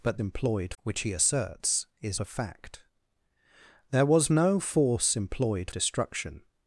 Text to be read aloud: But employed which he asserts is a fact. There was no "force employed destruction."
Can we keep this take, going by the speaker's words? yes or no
yes